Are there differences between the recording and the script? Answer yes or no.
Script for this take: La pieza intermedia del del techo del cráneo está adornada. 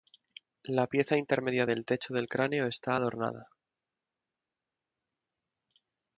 yes